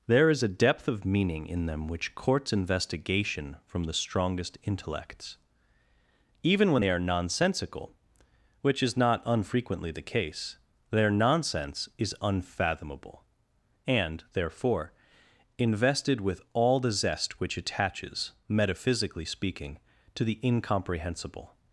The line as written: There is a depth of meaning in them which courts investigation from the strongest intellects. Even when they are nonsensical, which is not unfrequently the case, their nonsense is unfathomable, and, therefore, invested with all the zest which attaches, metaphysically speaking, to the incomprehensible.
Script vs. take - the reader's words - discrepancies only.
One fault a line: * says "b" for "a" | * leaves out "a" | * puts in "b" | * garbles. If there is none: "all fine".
all fine